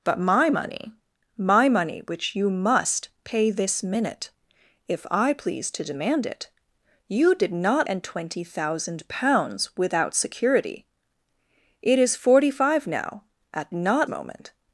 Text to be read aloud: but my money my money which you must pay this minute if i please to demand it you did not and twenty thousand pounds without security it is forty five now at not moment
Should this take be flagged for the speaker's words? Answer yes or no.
no